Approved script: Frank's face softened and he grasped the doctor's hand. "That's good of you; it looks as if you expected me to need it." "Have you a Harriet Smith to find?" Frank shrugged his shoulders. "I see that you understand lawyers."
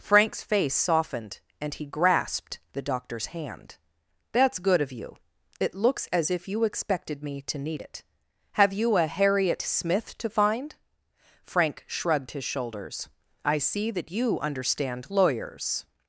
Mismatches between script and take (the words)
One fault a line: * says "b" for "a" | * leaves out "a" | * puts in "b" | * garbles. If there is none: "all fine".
all fine